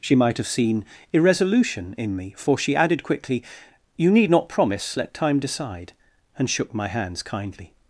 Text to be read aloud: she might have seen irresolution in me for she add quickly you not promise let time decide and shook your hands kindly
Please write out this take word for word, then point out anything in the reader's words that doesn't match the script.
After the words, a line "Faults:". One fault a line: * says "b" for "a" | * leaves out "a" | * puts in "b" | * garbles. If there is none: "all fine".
she might have seen irresolution in me for she added quickly you need not promise let time decide and shook my hands kindly
Faults:
* says "added" for "add"
* puts in "need"
* says "my" for "your"